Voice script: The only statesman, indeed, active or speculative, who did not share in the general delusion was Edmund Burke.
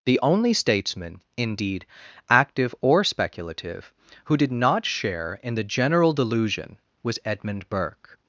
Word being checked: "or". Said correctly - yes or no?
yes